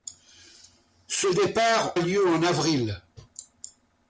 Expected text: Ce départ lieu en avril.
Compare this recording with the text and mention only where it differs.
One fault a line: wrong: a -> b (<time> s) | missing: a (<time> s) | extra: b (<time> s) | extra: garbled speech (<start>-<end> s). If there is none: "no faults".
no faults